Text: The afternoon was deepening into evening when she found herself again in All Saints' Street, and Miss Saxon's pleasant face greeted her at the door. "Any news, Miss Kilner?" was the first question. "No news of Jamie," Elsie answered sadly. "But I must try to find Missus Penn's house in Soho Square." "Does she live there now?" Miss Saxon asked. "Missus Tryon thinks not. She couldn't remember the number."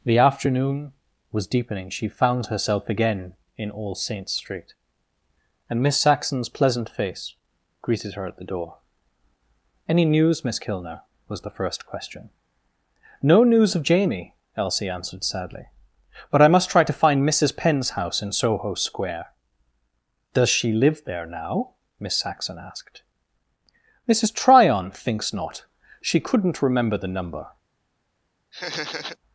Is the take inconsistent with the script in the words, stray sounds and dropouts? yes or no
yes